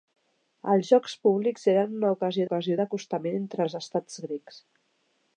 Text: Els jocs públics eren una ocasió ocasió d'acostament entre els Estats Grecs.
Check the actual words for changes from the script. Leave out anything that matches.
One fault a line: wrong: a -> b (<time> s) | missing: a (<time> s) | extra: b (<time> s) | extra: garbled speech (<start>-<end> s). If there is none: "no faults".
no faults